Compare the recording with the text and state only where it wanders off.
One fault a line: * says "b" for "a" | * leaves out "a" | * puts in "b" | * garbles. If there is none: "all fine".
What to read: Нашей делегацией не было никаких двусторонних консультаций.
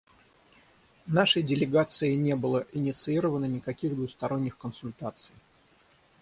* puts in "инициировано"